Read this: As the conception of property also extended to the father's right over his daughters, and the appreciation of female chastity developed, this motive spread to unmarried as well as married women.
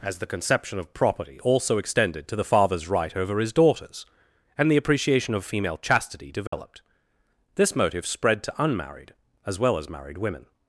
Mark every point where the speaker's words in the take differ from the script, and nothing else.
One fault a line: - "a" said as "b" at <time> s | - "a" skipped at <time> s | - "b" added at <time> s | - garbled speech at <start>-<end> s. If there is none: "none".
none